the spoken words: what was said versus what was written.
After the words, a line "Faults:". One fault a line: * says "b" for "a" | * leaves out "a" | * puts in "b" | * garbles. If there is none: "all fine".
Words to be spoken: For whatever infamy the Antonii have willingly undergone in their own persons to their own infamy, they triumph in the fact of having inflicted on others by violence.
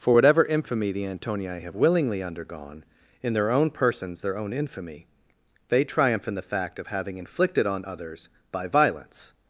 For whatever infamy the Antonii have willingly undergone in their own persons their own infamy, they triumph in the fact of having inflicted on others by violence.
Faults:
* leaves out "to"